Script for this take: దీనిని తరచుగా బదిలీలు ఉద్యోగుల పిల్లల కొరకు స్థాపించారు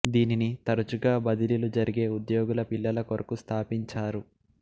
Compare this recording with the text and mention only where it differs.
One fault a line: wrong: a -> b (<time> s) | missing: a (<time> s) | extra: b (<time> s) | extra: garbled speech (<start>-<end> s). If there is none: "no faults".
extra: జరిగే (1.8 s)